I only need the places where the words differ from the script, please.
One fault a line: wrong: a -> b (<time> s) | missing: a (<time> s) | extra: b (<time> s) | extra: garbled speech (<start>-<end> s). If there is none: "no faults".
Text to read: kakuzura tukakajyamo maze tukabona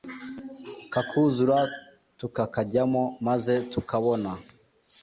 no faults